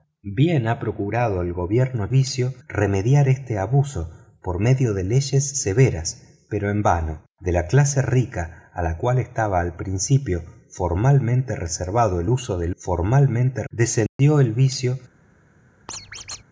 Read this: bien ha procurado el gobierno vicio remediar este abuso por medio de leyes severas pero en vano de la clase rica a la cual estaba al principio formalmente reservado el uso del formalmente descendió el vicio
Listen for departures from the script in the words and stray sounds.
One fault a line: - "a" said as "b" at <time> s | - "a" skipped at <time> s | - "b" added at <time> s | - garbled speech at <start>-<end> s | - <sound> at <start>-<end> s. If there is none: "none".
- dropout at 14.1-14.2 s
- squeak at 15.9-16.4 s